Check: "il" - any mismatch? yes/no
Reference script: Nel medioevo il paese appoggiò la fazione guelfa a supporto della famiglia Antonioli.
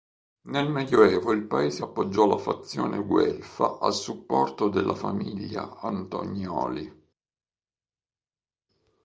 no